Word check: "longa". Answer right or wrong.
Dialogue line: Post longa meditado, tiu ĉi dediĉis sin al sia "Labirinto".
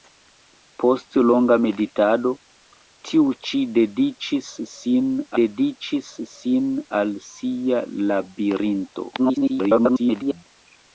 right